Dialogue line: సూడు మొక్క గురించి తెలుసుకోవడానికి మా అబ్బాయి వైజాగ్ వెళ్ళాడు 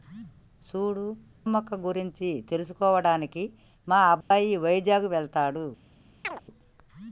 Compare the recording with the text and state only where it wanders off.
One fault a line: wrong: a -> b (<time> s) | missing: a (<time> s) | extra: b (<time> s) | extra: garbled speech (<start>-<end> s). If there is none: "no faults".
no faults